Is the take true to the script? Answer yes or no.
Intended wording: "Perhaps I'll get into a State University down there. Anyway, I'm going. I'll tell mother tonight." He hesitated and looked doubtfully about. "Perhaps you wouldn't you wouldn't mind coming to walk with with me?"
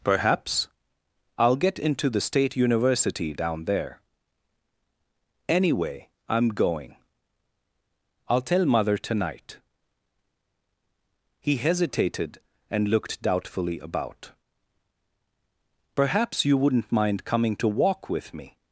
no